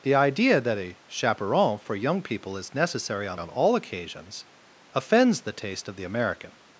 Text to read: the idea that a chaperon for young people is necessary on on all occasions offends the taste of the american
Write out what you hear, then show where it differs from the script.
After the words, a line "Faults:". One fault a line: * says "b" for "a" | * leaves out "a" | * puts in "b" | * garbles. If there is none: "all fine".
the idea that a chaperon for young people is necessary on on all occasions offends the taste of the american
Faults:
all fine